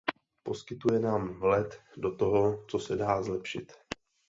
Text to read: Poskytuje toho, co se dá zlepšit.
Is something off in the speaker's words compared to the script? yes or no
yes